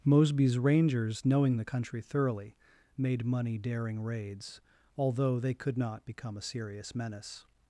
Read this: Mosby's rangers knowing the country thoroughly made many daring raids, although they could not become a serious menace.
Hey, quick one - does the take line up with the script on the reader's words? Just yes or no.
no